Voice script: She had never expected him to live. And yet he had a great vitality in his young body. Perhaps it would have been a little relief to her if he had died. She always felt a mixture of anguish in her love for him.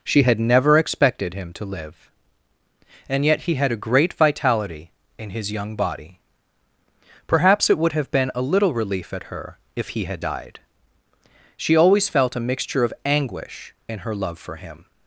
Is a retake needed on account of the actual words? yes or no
yes